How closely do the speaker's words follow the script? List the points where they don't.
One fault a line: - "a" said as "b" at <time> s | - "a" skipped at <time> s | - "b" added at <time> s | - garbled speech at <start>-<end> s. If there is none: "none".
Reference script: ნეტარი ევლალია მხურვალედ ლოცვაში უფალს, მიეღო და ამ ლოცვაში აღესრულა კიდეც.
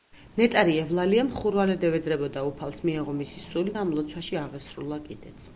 - "ლოცვაში" said as "ევედრებოდა" at 1.9 s
- "მისი სული" added at 3.2 s